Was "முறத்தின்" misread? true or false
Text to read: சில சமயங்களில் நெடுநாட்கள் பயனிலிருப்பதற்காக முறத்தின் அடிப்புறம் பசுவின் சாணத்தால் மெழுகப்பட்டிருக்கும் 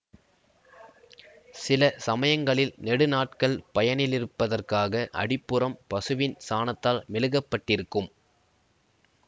true